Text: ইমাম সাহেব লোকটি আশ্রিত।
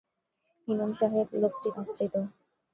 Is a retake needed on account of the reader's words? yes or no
no